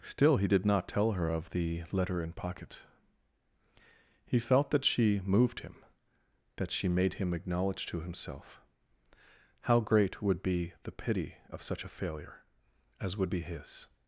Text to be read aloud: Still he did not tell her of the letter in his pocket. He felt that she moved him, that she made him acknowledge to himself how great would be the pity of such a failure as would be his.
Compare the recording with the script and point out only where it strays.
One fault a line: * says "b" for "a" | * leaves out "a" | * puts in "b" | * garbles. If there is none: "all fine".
* leaves out "his"